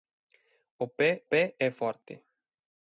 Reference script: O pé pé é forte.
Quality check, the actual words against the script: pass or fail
pass